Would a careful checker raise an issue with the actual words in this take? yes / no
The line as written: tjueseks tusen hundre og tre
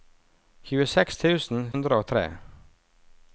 no